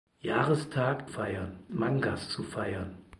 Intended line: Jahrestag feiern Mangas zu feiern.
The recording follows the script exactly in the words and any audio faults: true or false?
true